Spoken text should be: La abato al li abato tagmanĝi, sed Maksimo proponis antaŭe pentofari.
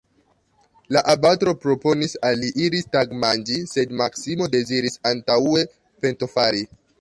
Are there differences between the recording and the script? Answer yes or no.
yes